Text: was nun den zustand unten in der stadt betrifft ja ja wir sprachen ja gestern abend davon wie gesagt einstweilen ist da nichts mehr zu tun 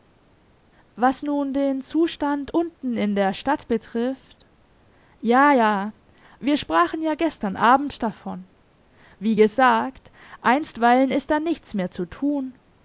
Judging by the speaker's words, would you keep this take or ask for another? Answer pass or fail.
pass